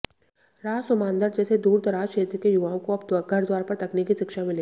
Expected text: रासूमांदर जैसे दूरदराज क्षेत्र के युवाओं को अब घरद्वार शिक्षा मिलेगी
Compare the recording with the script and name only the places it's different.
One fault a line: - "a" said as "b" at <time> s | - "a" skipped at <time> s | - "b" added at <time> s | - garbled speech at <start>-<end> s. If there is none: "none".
- "पर तकनीकी" added at 3.6 s